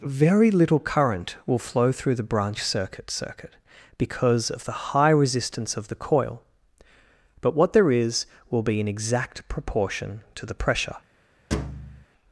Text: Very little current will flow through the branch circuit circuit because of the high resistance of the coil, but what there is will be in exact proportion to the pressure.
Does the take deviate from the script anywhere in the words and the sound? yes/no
yes